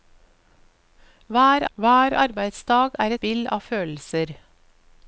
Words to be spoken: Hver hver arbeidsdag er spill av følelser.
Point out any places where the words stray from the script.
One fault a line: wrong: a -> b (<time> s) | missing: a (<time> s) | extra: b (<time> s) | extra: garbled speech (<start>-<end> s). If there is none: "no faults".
no faults